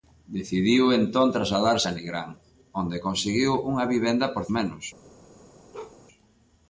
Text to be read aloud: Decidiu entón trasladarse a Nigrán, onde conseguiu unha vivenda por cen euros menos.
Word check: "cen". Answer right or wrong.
wrong